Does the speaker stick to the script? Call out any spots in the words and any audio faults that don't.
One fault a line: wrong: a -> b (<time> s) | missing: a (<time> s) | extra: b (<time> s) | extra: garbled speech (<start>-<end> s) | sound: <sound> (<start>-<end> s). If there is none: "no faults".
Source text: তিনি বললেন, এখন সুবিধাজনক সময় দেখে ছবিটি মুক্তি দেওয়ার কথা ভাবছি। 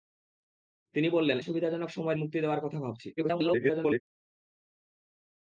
missing: এখন (1.4 s)
missing: দেখে ছবিটি (2.2 s)
extra: garbled speech (3.2-4.0 s)